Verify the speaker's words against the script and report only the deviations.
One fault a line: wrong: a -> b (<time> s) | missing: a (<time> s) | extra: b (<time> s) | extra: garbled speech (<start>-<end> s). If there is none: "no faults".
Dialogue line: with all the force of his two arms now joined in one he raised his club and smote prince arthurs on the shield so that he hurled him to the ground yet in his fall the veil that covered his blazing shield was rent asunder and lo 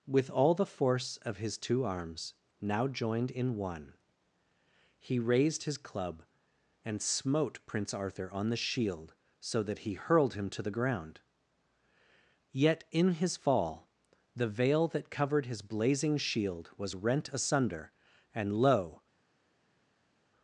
wrong: arthurs -> arthur (7.9 s)